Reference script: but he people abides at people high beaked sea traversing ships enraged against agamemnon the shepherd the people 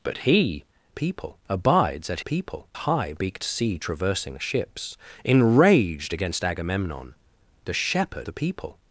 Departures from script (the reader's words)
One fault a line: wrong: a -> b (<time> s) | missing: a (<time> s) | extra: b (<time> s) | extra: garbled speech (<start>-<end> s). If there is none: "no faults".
no faults